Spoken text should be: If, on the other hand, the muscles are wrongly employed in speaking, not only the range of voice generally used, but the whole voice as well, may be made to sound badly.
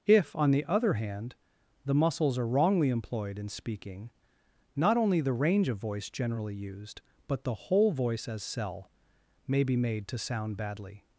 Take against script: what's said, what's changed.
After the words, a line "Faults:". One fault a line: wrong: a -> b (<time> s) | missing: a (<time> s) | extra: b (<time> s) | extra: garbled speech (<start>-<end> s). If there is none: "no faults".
If, on the other hand, the muscles are wrongly employed in speaking, not only the range of voice generally used, but the whole voice as cell, may be made to sound badly.
Faults:
wrong: well -> cell (8.4 s)